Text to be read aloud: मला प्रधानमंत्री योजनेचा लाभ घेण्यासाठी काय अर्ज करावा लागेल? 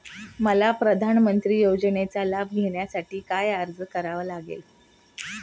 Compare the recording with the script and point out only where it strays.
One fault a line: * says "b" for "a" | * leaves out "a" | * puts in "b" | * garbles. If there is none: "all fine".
all fine